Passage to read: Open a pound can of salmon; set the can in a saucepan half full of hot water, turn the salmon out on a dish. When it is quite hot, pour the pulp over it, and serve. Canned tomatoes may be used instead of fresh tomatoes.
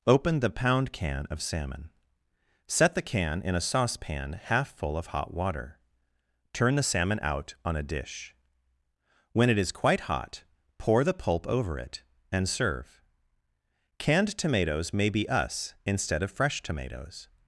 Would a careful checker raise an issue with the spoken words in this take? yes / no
yes